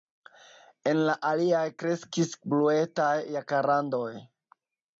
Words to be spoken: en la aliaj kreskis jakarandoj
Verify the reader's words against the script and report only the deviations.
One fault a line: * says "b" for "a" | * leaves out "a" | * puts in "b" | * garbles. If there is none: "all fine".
* puts in "bluetaj"